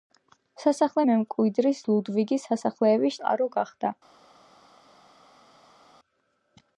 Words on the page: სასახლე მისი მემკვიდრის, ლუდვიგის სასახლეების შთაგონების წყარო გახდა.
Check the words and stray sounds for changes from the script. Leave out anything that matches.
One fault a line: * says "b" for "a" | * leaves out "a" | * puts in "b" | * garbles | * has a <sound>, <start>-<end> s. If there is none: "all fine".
* leaves out "მისი"
* leaves out "შთაგონების"